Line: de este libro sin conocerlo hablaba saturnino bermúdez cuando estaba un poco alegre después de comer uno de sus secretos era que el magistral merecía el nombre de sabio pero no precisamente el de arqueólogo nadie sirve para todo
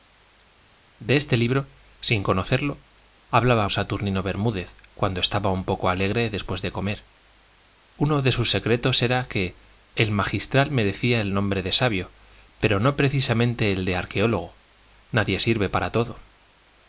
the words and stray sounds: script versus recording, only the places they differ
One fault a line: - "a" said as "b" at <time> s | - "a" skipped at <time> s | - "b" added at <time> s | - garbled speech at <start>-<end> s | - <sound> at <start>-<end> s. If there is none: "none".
none